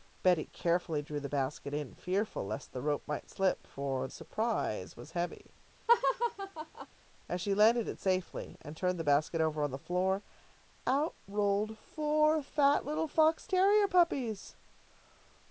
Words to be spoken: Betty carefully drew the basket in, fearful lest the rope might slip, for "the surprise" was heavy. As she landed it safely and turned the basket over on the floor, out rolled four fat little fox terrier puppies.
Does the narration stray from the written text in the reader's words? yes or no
yes